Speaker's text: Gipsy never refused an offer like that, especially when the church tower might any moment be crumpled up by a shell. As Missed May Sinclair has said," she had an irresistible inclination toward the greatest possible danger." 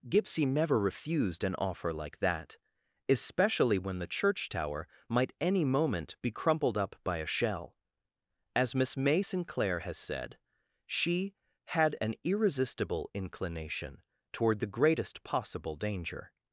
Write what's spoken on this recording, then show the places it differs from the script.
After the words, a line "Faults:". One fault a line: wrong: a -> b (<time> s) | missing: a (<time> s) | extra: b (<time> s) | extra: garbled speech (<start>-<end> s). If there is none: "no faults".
Gipsy never refused an offer like that, especially when the church tower might any moment be crumpled up by a shell. As Miss May Sinclair has said," she had an irresistible inclination toward the greatest possible danger."
Faults:
wrong: Missed -> Miss (8.8 s)